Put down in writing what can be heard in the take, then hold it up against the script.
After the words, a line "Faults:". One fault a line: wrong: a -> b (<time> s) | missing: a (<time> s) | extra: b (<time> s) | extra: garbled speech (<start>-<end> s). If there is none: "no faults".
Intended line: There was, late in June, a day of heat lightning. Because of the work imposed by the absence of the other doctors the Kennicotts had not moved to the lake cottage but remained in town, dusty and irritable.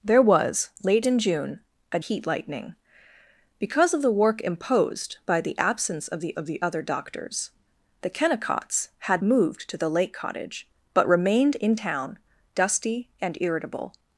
There was, late in June, a heat lightning. Because of the work imposed by the absence of the of the other doctors the Kennicotts had moved to the lake cottage but remained in town, dusty and irritable.
Faults:
missing: day of (2.0 s)
extra: of the (6.3 s)
missing: not (9.2 s)